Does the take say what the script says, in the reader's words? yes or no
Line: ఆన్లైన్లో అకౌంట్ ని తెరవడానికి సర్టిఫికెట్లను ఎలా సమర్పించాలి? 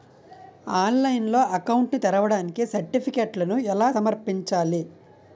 yes